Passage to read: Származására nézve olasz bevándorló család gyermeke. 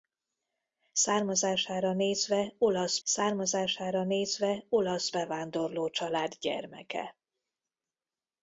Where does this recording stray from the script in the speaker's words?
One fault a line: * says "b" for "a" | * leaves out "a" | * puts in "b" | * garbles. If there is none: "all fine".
* puts in "származására nézve olasz"